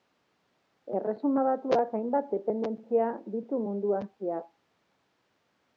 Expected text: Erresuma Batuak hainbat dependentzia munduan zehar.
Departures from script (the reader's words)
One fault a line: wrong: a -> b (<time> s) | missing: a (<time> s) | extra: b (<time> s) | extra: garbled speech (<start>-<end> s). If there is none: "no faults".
extra: ditu (3.4 s)